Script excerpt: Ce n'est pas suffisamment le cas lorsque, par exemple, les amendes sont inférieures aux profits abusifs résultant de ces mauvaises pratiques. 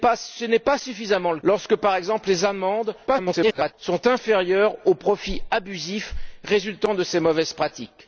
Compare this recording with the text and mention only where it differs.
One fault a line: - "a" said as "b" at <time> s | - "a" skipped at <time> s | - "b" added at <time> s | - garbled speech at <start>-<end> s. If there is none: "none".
- "cas" skipped at 1.4 s
- garbled speech at 3.1-3.7 s